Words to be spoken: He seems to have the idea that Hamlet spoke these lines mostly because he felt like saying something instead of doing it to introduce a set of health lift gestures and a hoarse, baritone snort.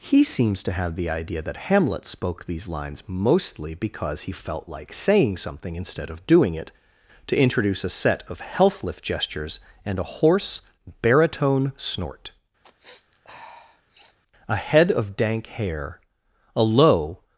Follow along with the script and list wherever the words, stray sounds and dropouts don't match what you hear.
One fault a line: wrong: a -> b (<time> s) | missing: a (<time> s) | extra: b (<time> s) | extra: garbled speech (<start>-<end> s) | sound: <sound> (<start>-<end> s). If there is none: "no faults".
sound: sniff (12.6-14.2 s)
extra: A head of dank hair a low (14.5 s)